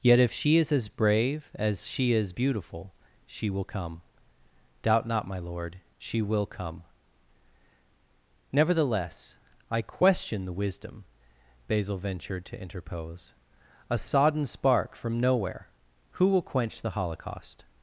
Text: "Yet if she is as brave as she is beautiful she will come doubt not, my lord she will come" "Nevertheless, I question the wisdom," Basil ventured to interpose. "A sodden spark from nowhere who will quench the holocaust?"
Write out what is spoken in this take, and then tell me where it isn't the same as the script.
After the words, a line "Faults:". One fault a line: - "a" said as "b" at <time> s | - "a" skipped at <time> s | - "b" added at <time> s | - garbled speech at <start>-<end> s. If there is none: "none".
"Yet if she is as brave as she is beautiful she will come doubt not, my lord she will come" "Nevertheless, I question the wisdom," Basil ventured to interpose. "A sodden spark from nowhere who will quench the holocaust?"
Faults:
none